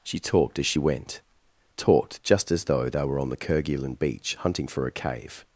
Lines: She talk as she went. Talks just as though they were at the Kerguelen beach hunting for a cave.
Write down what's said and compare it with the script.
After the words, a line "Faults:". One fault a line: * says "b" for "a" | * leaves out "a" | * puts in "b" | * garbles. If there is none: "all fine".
She talked as she went. Talked just as though they were on the Kerguelen beach hunting for a cave.
Faults:
* says "talked" for "talk"
* says "Talked" for "Talks"
* says "on" for "at"